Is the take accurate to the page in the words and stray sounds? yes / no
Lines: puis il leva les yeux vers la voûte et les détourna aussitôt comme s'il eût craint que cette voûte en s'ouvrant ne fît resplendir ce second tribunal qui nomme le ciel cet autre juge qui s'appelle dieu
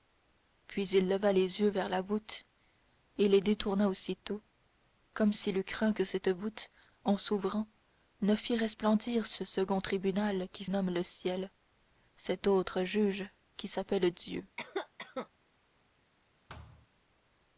no